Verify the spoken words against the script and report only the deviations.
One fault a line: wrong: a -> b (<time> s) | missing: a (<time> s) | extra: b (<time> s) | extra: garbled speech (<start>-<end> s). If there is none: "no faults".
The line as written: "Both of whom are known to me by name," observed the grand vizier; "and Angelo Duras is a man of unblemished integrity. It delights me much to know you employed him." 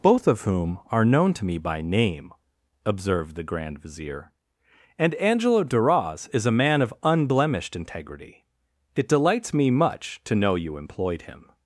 no faults